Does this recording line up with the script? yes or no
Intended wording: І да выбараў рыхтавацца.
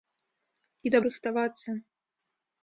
no